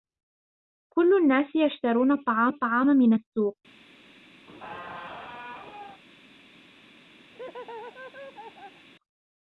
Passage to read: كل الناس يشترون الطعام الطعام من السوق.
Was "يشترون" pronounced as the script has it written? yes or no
yes